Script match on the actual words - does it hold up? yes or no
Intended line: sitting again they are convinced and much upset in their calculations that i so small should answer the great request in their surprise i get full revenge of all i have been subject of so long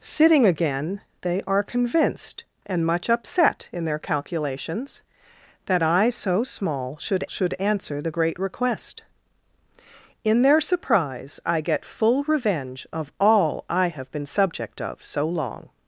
no